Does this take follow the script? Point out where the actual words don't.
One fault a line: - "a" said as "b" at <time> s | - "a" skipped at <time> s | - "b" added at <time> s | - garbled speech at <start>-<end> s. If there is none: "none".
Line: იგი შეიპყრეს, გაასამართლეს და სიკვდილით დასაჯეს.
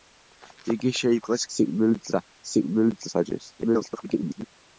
- "გაასამართლეს" said as "სიკვდილით" at 1.6 s
- garbled speech at 3.6-4.4 s